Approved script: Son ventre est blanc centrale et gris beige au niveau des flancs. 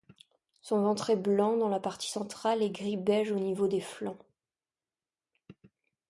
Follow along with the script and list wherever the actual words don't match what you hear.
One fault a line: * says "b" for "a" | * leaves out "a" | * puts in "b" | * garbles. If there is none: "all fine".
* puts in "dans la partie"